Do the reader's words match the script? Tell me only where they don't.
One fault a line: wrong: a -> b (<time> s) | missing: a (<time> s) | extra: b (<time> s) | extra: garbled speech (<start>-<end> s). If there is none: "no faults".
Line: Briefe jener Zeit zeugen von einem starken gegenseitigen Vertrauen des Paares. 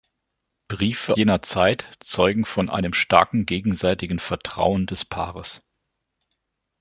no faults